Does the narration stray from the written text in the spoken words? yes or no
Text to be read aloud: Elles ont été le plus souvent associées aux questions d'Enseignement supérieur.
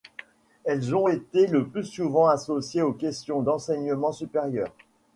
no